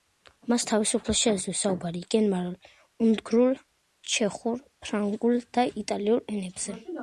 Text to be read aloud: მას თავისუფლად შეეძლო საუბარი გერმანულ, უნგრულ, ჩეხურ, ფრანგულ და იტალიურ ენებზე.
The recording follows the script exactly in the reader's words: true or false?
true